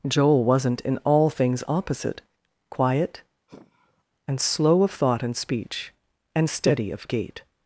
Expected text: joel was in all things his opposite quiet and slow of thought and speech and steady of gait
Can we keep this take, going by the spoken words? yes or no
no